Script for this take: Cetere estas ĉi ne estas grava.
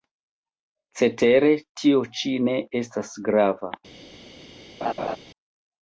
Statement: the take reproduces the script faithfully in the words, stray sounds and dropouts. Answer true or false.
false